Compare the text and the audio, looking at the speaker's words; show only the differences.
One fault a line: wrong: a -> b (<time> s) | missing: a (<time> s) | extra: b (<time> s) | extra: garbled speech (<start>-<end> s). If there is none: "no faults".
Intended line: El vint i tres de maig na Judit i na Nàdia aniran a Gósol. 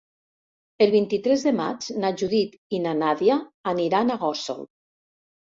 no faults